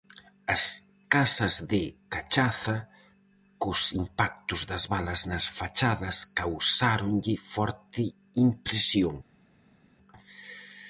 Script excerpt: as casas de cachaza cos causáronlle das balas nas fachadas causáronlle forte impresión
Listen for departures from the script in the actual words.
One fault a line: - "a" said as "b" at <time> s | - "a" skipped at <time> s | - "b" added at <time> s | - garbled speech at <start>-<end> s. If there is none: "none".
- "causáronlle" said as "impactos" at 4.0 s